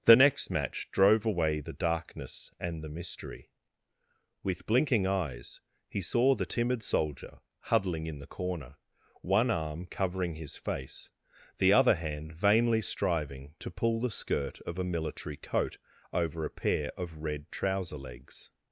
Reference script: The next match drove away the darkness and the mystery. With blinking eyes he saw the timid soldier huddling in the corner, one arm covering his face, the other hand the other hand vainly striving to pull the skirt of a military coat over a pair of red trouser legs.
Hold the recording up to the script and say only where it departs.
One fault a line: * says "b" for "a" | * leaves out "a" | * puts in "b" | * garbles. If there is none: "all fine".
* leaves out "the other hand"